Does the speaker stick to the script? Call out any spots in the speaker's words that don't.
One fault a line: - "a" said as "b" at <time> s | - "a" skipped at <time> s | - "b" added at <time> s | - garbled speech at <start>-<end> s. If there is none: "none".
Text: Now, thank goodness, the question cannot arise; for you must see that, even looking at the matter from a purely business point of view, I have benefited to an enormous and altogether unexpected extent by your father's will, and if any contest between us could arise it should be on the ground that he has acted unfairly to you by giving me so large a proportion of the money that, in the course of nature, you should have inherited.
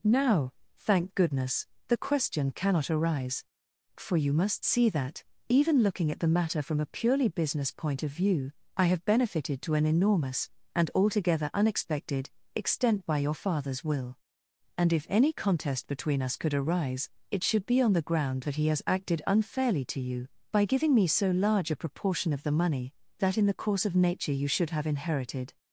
none